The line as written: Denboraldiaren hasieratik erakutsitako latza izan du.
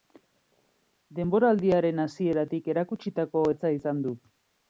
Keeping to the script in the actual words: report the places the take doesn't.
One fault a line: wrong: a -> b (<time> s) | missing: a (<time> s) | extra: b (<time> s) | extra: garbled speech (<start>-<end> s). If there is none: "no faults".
no faults